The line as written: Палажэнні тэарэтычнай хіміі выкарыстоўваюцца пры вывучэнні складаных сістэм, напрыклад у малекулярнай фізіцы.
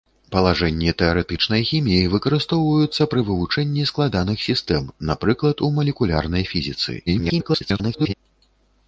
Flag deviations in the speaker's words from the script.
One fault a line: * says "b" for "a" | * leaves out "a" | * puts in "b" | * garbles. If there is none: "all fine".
* garbles